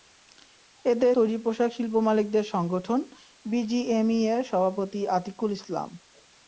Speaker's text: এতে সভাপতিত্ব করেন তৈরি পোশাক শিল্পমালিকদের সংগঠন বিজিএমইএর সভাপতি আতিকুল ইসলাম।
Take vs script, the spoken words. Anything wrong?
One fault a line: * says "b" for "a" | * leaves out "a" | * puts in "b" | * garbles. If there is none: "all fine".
* leaves out "সভাপতিত্ব করেন"